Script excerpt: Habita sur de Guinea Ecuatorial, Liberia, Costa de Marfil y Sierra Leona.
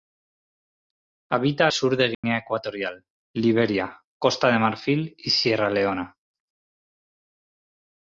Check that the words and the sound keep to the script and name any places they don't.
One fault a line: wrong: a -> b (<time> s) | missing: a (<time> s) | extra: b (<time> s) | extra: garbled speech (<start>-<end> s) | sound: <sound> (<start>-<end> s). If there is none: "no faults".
sound: dropout (2.1-2.2 s)